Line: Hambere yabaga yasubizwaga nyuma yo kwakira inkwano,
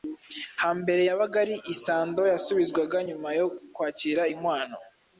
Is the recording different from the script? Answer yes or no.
yes